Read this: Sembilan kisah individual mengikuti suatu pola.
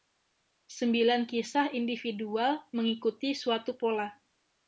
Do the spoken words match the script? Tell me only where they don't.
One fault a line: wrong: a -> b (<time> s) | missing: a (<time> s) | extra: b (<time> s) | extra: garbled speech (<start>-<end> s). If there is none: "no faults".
no faults